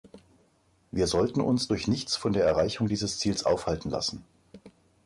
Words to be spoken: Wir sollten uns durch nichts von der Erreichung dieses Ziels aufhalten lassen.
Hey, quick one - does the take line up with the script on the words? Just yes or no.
yes